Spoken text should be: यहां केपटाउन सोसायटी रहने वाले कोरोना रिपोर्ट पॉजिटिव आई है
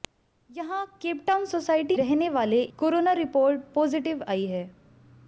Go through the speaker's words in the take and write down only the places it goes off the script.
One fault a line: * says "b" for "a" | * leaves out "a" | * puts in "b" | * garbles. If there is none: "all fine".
all fine